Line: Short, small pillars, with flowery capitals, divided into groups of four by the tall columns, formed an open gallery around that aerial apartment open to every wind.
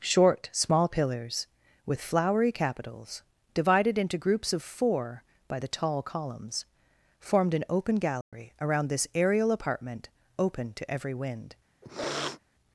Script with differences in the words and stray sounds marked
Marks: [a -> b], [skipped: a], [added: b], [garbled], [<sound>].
Short, small pillars, with flowery capitals, divided into groups of four by the tall columns, formed an open gallery [dropout] around [that -> this] aerial apartment open to every wind. [sniff]